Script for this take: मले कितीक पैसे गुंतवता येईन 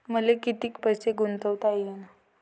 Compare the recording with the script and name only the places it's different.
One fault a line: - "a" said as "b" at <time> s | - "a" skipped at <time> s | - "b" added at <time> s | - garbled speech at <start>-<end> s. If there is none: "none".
none